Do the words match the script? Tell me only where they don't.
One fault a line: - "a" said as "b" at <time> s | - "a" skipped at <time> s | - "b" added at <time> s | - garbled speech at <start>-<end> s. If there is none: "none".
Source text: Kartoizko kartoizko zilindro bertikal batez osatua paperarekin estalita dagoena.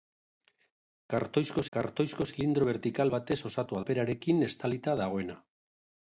none